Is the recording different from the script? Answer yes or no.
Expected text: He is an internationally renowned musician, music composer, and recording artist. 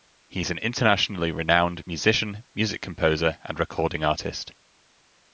no